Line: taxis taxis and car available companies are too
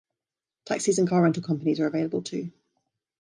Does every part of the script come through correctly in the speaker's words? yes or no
no